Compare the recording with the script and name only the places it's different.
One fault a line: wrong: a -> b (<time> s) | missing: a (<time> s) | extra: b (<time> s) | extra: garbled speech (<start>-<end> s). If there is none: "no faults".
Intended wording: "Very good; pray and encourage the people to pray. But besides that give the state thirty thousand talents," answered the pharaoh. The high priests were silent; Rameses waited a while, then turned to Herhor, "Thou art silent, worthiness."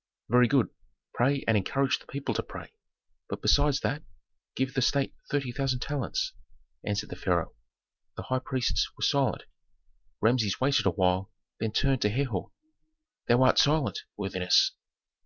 no faults